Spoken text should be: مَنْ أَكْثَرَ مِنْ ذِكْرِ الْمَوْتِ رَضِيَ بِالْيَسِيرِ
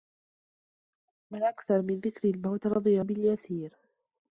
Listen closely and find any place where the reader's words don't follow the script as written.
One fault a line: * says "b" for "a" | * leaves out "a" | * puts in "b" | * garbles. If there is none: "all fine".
all fine